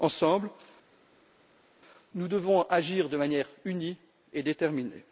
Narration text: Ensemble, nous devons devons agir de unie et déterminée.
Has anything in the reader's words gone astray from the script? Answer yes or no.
yes